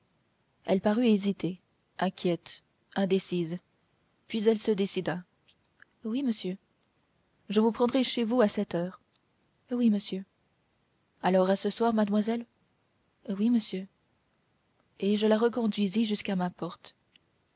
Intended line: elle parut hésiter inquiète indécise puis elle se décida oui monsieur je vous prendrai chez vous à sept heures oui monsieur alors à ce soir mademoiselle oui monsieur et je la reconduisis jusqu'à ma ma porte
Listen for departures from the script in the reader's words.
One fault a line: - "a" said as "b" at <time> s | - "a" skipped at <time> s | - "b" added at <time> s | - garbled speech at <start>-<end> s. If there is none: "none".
- "ma" skipped at 16.5 s